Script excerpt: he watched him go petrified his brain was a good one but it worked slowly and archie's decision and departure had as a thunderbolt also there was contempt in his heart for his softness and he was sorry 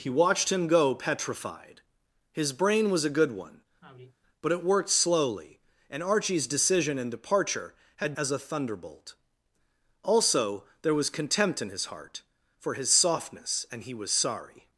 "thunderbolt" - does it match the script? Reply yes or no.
yes